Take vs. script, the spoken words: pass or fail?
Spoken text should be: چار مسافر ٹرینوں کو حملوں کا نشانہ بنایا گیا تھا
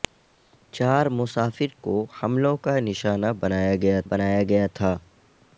fail